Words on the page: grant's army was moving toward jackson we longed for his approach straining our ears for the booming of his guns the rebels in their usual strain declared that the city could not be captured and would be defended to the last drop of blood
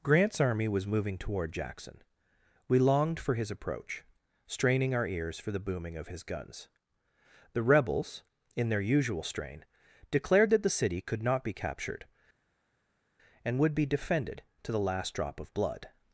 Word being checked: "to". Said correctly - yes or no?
yes